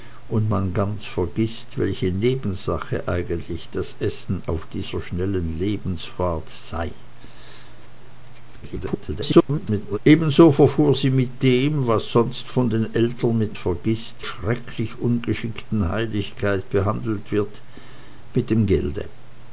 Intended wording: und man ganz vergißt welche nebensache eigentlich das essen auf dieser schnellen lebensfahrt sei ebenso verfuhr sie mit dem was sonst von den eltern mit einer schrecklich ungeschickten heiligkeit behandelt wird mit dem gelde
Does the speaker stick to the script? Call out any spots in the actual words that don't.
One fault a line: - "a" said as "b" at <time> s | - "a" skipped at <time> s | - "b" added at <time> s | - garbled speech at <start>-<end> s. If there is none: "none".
- garbled speech at 8.6-10.0 s
- "einer" said as "vergißt" at 13.5 s